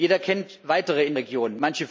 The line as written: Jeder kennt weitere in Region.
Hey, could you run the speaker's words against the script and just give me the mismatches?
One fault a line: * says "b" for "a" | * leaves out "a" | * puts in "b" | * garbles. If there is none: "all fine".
all fine